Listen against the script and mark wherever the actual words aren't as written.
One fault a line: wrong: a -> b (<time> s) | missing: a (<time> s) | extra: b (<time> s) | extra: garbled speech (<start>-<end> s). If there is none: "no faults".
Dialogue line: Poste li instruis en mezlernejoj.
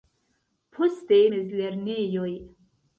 missing: li instruis en (1.2 s)